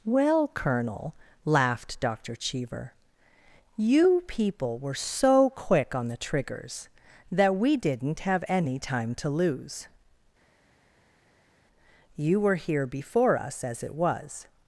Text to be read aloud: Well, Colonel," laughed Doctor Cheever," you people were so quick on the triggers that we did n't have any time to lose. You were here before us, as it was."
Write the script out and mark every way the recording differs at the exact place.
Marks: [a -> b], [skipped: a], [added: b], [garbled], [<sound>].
Well, Colonel," laughed Doctor Cheever," you people were so quick on the triggers that we did n't have any time to lose. You were here before us, as it was."